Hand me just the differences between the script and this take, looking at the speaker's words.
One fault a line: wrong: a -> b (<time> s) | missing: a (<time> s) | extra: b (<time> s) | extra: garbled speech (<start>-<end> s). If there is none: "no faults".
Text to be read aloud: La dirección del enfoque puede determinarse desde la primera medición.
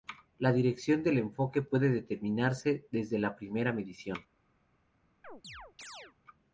no faults